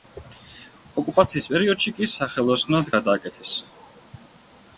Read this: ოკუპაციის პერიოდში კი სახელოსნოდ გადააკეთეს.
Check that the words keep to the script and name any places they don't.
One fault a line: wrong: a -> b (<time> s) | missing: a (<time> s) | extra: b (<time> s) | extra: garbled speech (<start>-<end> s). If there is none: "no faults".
no faults